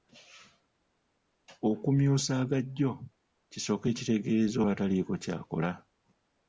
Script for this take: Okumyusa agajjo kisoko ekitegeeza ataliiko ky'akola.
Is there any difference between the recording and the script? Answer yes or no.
no